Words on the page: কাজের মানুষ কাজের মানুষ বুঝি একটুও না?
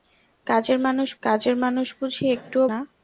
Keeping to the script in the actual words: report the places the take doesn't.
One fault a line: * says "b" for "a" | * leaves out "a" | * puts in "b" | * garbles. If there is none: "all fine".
all fine